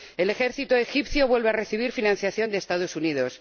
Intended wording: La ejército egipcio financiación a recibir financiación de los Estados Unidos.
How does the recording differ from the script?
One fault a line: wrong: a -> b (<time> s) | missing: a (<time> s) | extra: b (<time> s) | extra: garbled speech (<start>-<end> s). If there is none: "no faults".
wrong: La -> El (0.2 s)
wrong: financiación -> vuelve (1.3 s)